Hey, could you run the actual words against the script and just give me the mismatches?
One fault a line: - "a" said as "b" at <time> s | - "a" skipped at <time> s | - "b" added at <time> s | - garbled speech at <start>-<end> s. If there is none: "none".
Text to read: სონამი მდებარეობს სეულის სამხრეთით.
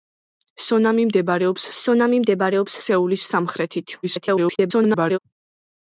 - "სონამი მდებარეობს" added at 1.8 s
- garbled speech at 4.0-5.2 s